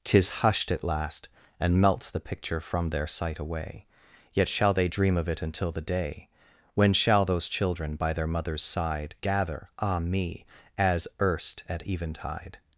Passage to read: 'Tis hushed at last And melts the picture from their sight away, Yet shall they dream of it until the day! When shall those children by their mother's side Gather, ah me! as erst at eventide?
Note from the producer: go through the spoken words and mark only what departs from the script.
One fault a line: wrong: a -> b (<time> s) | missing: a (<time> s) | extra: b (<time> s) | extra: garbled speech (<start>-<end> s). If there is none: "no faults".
no faults